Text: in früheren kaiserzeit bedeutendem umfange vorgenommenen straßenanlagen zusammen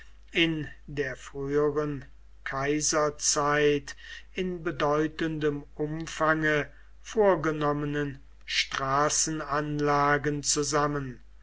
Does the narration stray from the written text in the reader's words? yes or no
yes